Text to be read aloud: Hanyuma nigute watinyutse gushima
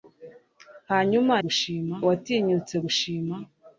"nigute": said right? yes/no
no